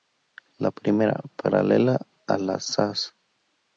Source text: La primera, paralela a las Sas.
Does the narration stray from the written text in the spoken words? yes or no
no